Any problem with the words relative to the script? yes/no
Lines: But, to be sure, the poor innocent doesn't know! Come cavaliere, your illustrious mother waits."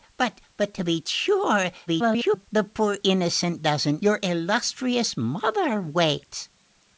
yes